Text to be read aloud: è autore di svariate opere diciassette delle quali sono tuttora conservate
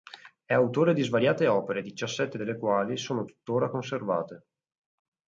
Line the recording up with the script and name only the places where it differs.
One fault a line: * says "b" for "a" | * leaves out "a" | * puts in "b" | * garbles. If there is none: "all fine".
all fine